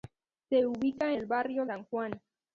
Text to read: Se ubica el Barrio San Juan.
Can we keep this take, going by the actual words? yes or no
yes